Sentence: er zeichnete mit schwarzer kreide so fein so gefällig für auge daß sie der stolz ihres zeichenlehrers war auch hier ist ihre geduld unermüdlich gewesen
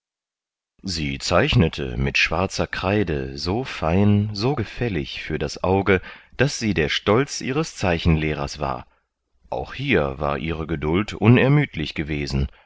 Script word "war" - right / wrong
right